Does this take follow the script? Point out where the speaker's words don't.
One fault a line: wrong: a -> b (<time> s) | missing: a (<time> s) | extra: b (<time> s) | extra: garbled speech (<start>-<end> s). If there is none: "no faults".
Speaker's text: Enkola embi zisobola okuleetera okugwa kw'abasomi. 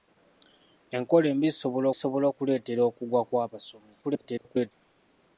extra: zisobola (1.9 s)
extra: garbled speech (4.0-4.7 s)